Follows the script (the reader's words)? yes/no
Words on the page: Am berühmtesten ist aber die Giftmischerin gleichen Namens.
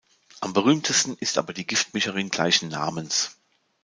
yes